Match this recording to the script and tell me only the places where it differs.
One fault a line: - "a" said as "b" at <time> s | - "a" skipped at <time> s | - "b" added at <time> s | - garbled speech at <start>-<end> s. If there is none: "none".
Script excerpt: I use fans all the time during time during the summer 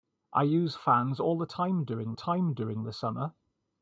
none